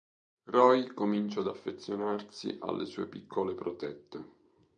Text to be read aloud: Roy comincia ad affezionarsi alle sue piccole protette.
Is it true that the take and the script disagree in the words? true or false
false